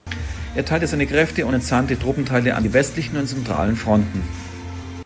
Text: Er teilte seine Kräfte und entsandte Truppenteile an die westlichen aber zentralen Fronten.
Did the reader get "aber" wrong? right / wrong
wrong